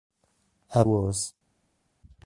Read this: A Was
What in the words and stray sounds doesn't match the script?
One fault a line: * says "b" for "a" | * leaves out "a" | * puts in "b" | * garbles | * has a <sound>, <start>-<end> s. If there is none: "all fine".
all fine